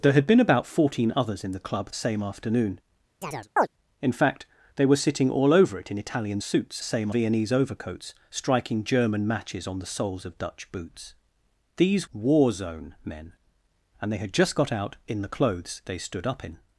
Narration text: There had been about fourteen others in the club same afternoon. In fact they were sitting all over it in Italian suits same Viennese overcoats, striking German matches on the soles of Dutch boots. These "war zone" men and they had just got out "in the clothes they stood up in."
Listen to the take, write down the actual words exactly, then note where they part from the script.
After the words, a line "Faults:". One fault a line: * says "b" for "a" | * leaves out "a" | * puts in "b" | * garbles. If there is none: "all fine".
There had been about fourteen others in the club same afternoon. In fact they were sitting all over it in Italian suits same Viennese overcoats, striking German matches on the soles of Dutch boots. These "war zone" men and they had just got out "in the clothes they stood up in."
Faults:
all fine